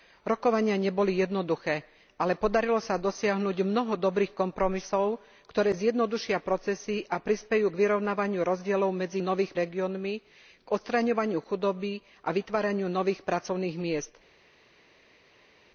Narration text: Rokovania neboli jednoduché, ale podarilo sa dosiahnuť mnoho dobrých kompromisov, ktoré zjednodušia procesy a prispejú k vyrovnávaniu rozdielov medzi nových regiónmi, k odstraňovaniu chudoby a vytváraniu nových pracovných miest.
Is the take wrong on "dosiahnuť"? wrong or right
right